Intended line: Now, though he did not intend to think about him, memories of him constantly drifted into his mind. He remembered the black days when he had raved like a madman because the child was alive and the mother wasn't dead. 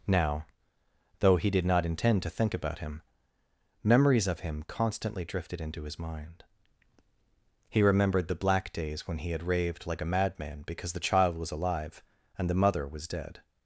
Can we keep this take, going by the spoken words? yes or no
no